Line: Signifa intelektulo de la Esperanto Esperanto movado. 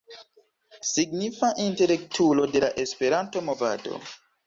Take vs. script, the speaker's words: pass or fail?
fail